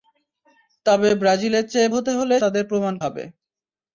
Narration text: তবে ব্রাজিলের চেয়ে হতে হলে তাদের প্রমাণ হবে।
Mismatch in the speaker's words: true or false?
false